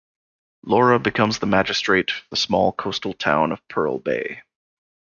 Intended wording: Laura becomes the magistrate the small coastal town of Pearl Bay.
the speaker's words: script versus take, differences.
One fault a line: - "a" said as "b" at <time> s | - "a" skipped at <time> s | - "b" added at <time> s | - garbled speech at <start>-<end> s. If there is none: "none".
none